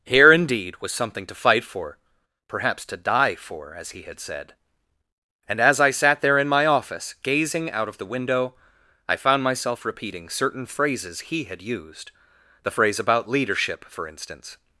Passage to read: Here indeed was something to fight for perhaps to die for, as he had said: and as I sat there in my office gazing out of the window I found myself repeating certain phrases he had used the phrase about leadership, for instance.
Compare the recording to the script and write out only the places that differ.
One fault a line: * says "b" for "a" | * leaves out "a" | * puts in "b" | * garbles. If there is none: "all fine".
all fine